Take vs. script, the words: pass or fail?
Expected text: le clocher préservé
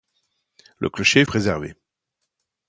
pass